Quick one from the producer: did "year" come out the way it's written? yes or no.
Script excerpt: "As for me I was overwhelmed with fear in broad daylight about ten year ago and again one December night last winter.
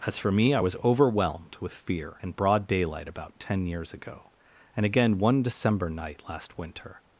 no